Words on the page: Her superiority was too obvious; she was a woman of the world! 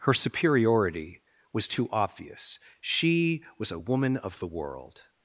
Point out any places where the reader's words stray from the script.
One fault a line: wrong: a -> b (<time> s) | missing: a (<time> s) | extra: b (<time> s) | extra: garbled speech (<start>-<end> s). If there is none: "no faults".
no faults